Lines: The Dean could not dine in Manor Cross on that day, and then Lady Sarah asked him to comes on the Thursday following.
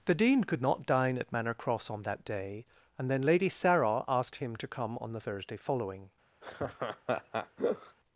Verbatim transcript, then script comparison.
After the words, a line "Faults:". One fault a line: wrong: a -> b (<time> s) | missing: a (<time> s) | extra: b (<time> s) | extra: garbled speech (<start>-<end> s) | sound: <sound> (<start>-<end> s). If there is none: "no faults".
The Dean could not dine at Manor Cross on that day, and then Lady Sarah asked him to come on the Thursday following.
Faults:
wrong: in -> at (1.2 s)
wrong: comes -> come (4.7 s)
sound: laugh (6.4-8.0 s)